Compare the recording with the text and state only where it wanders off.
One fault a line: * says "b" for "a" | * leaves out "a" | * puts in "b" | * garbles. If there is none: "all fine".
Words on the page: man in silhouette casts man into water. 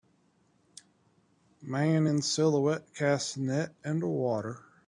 * says "net" for "man"